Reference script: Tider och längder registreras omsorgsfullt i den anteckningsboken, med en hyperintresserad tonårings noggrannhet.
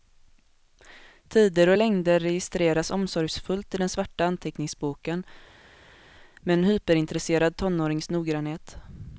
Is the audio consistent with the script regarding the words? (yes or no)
no